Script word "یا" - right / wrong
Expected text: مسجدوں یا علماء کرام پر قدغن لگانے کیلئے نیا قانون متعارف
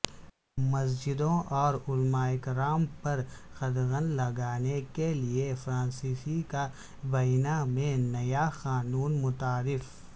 wrong